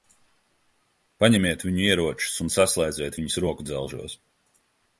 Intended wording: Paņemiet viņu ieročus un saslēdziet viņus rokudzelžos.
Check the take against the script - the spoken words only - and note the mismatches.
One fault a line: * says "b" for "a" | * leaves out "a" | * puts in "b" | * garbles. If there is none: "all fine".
all fine